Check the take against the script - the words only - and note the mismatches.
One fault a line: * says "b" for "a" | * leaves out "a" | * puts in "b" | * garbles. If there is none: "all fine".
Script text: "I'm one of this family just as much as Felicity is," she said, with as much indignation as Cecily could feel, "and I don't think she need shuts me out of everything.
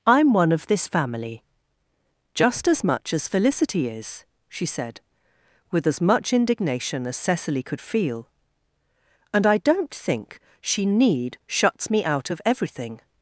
all fine